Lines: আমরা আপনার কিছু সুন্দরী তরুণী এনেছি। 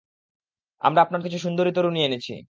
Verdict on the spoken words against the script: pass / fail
pass